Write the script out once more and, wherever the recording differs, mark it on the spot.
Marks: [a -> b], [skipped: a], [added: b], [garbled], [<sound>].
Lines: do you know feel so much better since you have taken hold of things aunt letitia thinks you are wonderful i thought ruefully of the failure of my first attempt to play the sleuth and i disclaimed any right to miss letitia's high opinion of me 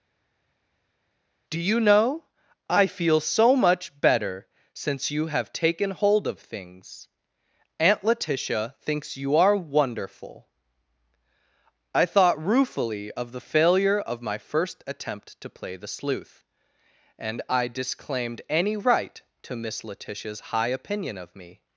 do you know [added: i] feel so much better since you have taken hold of things aunt letitia thinks you are wonderful i thought ruefully of the failure of my first attempt to play the sleuth and i disclaimed any right to miss letitia's high opinion of me